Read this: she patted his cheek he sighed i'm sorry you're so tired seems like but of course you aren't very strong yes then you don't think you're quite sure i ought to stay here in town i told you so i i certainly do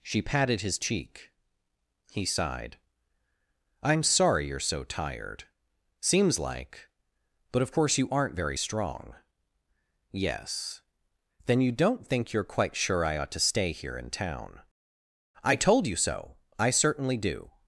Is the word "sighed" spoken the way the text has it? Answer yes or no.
yes